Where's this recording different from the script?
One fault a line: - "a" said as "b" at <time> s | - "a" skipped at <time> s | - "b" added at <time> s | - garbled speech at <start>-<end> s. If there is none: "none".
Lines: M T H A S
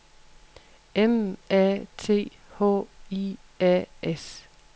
- "A" added at 1.5 s
- "I" added at 3.1 s